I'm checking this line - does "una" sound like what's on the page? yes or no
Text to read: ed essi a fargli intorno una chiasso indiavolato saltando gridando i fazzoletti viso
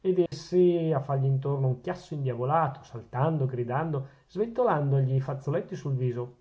no